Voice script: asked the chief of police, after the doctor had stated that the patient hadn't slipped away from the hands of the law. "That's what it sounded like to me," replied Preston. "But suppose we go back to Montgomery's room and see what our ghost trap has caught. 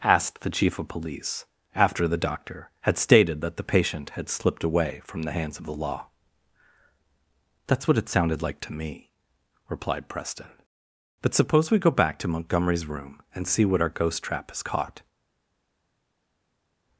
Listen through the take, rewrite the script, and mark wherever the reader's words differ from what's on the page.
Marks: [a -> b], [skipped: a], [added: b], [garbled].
asked the chief of police, after the doctor had stated that the patient [hadn't -> had] slipped away from the hands of the law. "That's what it sounded like to me," replied Preston. "But suppose we go back to Montgomery's room and see what our ghost trap has caught.